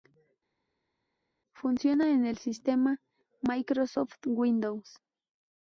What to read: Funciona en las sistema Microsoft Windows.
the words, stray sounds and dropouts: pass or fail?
fail